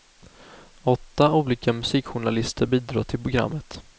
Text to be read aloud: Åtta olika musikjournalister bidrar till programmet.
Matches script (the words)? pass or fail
pass